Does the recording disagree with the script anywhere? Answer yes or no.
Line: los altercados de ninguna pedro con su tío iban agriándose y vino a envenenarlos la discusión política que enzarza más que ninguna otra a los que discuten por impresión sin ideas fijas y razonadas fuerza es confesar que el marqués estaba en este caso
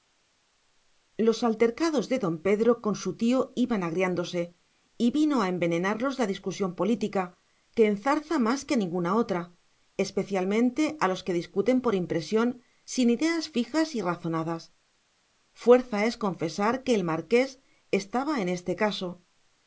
yes